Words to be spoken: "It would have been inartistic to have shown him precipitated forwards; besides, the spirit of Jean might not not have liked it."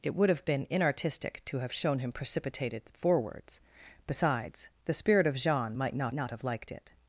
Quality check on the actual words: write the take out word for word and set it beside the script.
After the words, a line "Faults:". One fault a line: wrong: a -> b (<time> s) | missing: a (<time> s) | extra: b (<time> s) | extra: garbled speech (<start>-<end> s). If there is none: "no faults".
"It would have been inartistic to have shown him precipitated forwards; besides, the spirit of Jean might not not have liked it."
Faults:
no faults